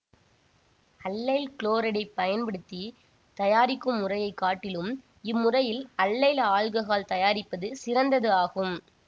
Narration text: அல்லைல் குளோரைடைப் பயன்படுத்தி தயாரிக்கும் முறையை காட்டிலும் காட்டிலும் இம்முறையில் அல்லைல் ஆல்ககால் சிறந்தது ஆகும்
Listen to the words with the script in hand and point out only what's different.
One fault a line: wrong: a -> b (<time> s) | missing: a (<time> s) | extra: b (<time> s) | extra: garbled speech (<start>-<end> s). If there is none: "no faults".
missing: காட்டிலும் (4.9 s)
extra: தயாரிப்பது (7.1 s)